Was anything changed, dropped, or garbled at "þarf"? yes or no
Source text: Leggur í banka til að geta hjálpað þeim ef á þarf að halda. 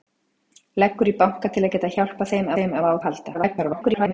yes